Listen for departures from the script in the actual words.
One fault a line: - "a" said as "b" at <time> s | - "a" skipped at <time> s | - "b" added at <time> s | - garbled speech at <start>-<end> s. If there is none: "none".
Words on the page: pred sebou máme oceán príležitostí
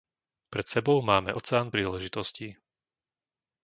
none